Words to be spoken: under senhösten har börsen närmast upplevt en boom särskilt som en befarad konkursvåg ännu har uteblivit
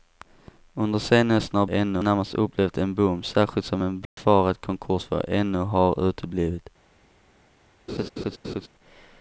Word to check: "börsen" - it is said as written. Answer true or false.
false